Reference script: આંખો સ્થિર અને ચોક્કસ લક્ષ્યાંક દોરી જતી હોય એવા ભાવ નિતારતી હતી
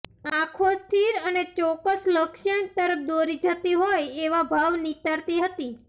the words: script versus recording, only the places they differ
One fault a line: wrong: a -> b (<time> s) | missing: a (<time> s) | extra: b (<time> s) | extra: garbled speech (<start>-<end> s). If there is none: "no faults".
extra: તરફ (2.8 s)